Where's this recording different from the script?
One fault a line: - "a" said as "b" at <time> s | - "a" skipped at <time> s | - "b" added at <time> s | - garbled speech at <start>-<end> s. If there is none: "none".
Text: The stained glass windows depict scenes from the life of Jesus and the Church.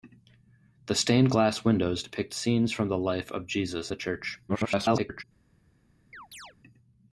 - "and" skipped at 3.9 s
- garbled speech at 4.5-5.2 s